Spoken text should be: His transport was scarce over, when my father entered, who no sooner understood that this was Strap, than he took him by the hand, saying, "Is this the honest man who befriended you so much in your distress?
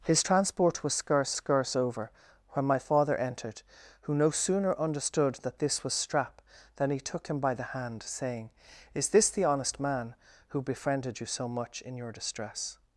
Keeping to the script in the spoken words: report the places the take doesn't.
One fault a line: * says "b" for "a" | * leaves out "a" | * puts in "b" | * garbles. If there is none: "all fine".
* puts in "scarce"